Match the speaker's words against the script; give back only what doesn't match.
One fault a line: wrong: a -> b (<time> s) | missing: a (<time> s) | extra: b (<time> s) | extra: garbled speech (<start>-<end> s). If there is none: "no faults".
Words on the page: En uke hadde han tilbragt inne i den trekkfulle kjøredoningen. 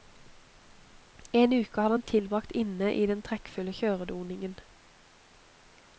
no faults